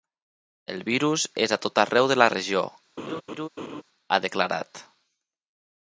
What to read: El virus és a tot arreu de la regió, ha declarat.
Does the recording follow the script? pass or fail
pass